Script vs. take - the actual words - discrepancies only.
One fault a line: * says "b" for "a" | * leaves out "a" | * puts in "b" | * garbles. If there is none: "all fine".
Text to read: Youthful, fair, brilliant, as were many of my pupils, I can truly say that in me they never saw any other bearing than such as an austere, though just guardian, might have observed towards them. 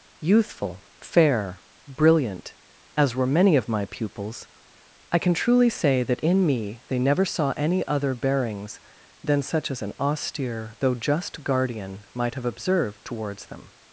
* says "bearings" for "bearing"